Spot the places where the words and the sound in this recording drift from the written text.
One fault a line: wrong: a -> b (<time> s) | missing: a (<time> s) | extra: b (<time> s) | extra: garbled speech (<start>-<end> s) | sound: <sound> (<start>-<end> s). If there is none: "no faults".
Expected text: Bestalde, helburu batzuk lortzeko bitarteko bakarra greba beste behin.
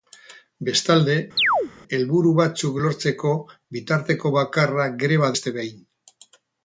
sound: chirp (1.4-1.7 s)